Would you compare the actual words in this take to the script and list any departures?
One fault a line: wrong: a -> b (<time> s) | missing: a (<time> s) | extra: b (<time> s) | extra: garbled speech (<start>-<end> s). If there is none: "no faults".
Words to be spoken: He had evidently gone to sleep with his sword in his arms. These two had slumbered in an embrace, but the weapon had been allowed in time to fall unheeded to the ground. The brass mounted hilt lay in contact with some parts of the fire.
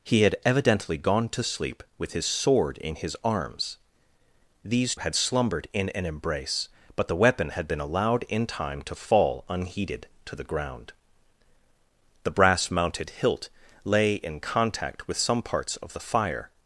missing: two (5.0 s)